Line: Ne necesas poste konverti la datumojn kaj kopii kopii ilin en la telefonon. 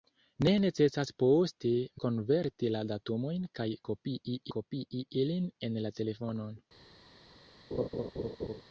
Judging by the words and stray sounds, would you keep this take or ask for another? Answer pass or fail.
fail